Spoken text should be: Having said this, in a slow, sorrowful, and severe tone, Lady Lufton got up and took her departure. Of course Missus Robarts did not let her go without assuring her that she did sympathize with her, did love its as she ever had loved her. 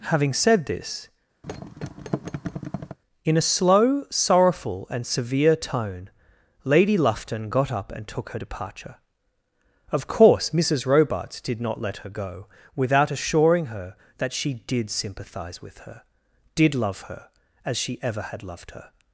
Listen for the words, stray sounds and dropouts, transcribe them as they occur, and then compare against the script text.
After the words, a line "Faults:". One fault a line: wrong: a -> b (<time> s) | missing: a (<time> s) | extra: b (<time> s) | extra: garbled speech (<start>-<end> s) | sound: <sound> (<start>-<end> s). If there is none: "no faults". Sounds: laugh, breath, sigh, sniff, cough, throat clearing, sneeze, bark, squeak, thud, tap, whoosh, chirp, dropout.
Having said this, in a slow, sorrowful, and severe tone, Lady Lufton got up and took her departure. Of course Missus Robarts did not let her go without assuring her that she did sympathize with her, did love her as she ever had loved her.
Faults:
sound: thud (1.4-3.0 s)
wrong: its -> her (17.0 s)